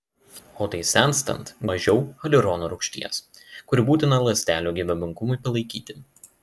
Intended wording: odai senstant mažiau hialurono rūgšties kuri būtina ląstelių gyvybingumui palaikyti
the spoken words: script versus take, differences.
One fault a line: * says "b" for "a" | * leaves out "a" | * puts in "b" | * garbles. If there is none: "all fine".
all fine